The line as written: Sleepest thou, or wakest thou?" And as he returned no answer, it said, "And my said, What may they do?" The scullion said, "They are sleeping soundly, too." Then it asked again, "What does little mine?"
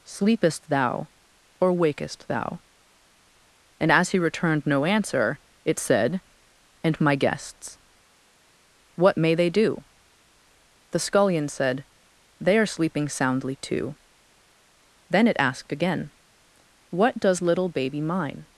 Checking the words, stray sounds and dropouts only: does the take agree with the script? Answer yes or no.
no